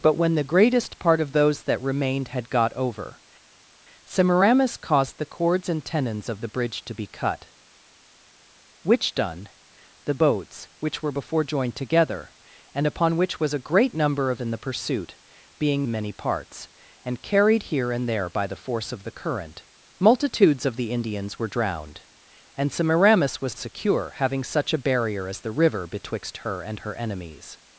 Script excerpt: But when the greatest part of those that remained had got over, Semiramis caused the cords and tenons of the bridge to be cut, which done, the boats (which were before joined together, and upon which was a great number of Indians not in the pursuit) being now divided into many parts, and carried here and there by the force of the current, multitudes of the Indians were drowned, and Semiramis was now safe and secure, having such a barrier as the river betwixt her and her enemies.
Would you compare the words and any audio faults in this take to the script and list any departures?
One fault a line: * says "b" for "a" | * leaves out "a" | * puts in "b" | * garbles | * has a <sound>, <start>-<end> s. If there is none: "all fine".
* leaves out "Indians not"
* leaves out "now divided into"
* leaves out "now safe and"